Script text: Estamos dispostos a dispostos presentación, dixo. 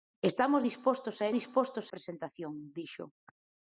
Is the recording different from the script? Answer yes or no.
no